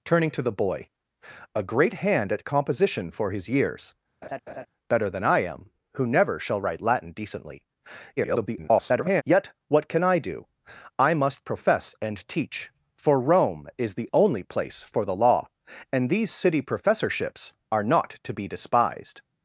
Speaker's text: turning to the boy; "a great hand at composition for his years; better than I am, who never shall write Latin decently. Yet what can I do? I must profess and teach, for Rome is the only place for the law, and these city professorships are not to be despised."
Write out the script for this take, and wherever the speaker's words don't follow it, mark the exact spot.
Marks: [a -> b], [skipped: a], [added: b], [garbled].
turning to the boy; "a great hand at composition for his years; better than I am, who never shall write Latin decently. [garbled] Yet what can I do? I must profess and teach, for Rome is the only place for the law, and these city professorships are not to be despised."